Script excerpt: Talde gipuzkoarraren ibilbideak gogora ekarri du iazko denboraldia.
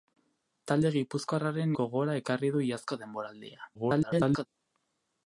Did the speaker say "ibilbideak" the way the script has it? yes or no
no